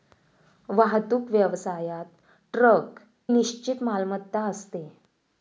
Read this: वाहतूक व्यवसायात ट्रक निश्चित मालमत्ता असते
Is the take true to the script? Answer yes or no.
yes